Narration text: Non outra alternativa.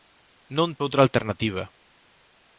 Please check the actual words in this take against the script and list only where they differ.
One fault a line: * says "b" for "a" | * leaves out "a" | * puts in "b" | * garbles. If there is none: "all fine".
all fine